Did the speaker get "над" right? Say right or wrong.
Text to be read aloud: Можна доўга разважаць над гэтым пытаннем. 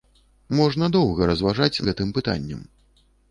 wrong